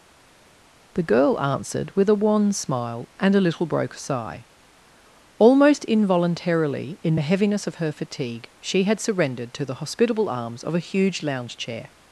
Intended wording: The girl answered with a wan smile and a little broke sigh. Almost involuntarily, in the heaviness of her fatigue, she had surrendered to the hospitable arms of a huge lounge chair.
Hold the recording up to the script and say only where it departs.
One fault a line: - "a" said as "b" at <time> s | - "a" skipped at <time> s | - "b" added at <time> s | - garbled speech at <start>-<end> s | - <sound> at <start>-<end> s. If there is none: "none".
none